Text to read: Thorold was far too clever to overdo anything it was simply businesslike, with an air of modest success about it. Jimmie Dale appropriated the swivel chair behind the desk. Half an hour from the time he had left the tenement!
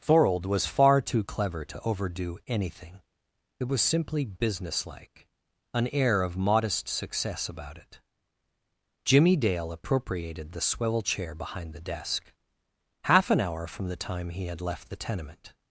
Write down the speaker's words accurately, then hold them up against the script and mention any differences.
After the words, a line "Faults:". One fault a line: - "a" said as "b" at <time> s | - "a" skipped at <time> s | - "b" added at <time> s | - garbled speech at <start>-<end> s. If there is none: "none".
Thorold was far too clever to overdo anything it was simply businesslike, an air of modest success about it. Jimmie Dale appropriated the swivel chair behind the desk. Half an hour from the time he had left the tenement!
Faults:
- "with" skipped at 5.3 s